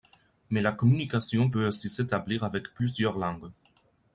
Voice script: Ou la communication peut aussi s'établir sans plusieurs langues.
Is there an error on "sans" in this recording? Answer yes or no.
yes